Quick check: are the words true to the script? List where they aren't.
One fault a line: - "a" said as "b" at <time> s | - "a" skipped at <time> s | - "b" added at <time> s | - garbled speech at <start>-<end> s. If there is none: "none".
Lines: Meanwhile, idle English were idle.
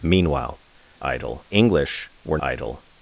none